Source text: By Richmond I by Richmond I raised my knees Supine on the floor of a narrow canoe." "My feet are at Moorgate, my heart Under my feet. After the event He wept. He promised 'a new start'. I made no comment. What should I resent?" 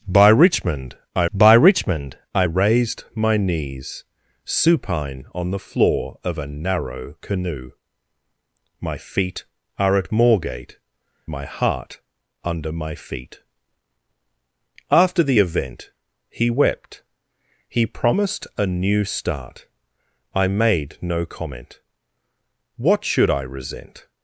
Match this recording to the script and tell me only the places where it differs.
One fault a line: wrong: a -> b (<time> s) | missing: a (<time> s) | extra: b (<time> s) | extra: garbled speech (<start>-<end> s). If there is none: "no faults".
no faults